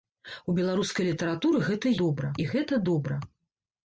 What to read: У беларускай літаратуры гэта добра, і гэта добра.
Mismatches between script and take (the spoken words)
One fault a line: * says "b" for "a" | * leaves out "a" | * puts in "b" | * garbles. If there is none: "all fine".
all fine